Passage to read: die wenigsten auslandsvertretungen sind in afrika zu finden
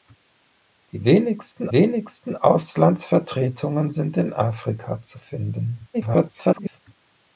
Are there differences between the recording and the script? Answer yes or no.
yes